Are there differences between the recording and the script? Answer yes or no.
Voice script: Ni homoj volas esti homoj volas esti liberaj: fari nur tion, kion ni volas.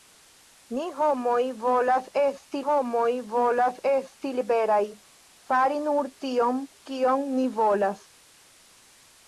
no